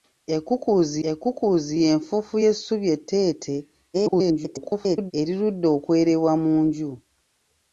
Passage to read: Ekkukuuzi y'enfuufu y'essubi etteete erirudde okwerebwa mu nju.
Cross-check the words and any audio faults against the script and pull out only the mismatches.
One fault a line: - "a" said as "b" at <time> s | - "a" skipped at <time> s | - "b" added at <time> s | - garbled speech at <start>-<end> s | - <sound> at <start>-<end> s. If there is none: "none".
- "ekkukuuzi" added at 1.1 s
- garbled speech at 3.9-5.1 s